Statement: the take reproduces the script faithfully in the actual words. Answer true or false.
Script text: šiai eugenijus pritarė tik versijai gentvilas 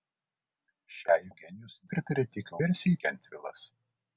true